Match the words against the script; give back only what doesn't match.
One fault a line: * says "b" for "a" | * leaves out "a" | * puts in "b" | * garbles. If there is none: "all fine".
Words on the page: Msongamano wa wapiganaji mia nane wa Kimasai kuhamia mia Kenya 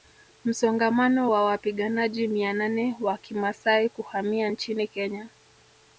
* says "nchini" for "mia"